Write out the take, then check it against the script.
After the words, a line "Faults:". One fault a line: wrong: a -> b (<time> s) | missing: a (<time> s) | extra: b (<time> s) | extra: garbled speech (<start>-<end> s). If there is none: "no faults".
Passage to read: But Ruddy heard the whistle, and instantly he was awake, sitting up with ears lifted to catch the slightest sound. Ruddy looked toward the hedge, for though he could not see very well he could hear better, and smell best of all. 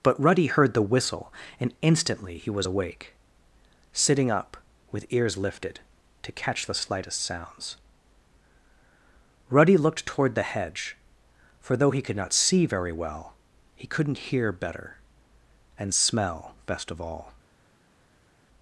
But Ruddy heard the whistle, and instantly he was awake, sitting up with ears lifted to catch the slightest sounds. Ruddy looked toward the hedge, for though he could not see very well he couldn't hear better, and smell best of all.
Faults:
wrong: sound -> sounds (7.2 s)
wrong: could -> couldn't (13.9 s)